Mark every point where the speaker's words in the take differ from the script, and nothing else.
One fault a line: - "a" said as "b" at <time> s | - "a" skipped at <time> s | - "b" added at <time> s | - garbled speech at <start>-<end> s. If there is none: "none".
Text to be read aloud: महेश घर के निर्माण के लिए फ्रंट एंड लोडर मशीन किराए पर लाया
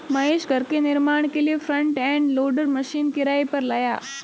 none